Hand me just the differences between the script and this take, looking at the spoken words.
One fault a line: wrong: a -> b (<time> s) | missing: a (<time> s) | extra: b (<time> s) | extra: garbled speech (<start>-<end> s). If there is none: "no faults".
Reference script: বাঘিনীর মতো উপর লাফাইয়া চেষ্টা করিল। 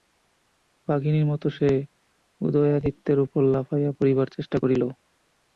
extra: সে উদয়াদিত্যের (1.5 s)
extra: পড়িবার (4.0 s)